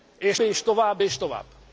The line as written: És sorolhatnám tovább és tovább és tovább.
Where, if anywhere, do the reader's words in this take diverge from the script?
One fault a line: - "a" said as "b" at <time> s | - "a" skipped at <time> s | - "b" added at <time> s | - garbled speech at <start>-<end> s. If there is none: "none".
- "sorolhatnám tovább" skipped at 0.4 s